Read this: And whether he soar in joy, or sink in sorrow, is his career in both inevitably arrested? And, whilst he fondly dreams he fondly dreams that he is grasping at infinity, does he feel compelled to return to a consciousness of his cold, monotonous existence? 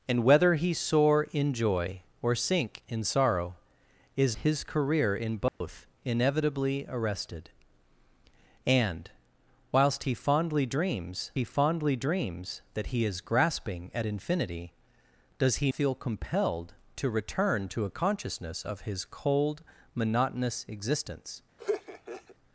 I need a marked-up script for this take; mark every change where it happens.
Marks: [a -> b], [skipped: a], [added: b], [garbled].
And whether he soar in joy, or sink in sorrow, is his career in both inevitably arrested? And, whilst he fondly dreams he fondly dreams that he is grasping at infinity, does he feel compelled to return to a consciousness of his cold, monotonous existence?